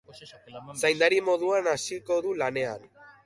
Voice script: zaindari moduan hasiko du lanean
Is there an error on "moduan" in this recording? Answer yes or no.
no